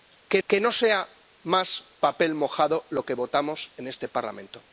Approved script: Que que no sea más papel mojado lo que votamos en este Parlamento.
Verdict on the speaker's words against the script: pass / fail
pass